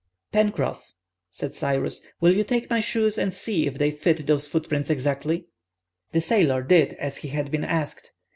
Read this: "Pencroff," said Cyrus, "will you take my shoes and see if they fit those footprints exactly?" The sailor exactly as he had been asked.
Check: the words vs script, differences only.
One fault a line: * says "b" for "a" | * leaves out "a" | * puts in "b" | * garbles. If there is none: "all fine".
* says "did" for "exactly"